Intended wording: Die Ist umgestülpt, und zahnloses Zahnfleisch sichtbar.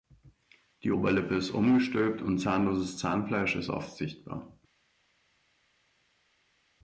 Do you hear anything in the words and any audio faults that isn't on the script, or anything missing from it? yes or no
yes